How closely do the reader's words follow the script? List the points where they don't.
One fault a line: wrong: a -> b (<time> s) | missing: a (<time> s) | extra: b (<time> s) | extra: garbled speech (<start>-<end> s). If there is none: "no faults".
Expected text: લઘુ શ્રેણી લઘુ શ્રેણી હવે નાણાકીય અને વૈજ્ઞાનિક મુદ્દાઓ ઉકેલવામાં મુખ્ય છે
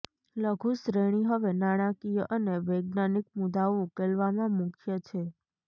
missing: લઘુ શ્રેણી (1.3 s)